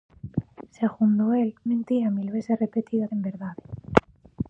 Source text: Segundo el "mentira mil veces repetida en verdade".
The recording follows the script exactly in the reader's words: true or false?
true